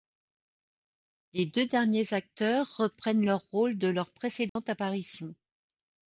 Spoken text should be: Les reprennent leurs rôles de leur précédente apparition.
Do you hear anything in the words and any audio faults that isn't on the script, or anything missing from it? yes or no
yes